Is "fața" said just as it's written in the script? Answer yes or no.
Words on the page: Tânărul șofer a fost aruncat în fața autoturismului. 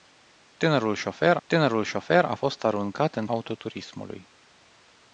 no